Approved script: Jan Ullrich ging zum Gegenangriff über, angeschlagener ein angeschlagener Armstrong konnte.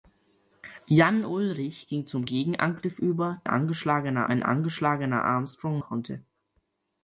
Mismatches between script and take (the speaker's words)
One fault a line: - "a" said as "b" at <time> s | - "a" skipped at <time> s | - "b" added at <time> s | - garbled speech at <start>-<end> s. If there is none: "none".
none